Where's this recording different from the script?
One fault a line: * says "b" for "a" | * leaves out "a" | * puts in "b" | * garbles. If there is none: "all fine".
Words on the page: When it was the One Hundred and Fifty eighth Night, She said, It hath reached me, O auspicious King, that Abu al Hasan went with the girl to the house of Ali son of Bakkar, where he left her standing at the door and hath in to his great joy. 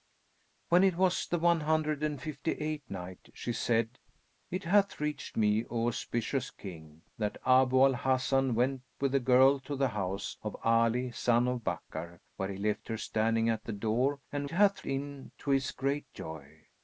all fine